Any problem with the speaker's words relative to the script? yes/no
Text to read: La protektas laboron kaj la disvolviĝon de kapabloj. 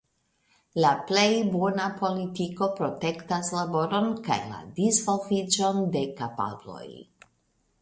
yes